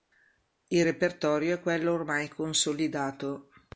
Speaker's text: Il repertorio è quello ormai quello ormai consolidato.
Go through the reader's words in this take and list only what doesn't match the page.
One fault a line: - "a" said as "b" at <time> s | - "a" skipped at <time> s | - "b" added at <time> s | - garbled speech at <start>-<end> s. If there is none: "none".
- "quello ormai" skipped at 2.3 s